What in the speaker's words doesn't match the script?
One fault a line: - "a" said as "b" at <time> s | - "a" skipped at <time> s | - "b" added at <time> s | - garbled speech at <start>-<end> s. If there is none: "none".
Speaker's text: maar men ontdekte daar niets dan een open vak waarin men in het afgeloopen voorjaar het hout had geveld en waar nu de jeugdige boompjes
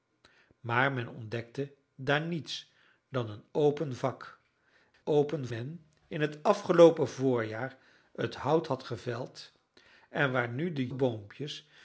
- "waarin" said as "open" at 5.0 s
- "jeugdige" skipped at 10.9 s